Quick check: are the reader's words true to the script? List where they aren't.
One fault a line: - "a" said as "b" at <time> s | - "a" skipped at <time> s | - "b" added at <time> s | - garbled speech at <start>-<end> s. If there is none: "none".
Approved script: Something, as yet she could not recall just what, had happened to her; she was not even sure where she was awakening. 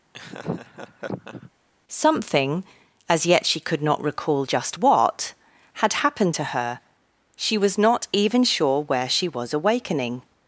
none